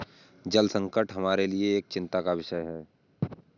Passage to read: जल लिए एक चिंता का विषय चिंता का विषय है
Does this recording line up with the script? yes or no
no